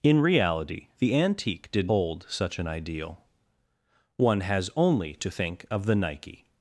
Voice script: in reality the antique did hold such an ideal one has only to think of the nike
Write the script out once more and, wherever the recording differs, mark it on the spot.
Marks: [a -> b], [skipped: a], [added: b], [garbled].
in reality the antique did hold such an ideal one has only to think of the nike